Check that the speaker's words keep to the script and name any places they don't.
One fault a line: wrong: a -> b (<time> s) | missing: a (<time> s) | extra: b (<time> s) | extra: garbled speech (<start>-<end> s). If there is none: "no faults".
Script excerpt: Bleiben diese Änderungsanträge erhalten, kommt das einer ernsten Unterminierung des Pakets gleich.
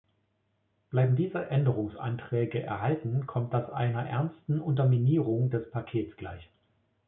no faults